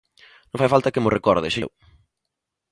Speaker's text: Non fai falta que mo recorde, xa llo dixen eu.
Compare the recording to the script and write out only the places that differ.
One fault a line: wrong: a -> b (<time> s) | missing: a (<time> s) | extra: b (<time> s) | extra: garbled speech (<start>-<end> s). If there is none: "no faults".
missing: llo dixen (1.6 s)